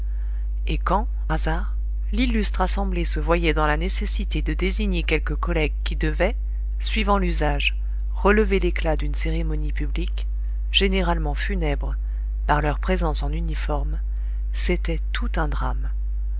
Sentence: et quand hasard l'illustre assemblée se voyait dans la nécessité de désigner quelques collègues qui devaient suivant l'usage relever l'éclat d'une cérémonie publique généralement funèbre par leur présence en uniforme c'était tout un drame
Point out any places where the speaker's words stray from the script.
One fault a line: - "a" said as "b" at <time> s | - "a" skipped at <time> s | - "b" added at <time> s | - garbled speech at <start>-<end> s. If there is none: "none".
none